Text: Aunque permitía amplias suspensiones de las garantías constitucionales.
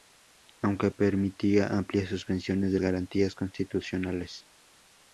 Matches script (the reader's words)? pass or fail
fail